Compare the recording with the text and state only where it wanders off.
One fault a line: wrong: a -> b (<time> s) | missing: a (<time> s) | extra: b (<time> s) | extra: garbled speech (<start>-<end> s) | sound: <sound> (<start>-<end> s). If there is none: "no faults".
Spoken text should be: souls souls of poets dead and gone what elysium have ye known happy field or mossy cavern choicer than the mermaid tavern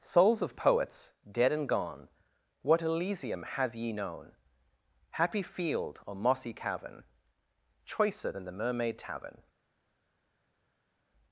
missing: souls (0.4 s)